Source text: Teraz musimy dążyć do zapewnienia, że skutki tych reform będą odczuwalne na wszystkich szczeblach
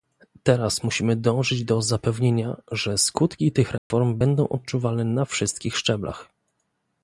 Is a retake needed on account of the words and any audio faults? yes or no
yes